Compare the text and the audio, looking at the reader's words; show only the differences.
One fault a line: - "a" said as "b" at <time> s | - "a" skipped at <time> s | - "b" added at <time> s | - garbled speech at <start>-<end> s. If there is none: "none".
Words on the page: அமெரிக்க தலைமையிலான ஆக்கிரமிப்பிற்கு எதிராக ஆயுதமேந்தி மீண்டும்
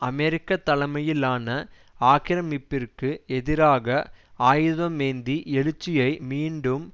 - "எழுச்சியை" added at 5.5 s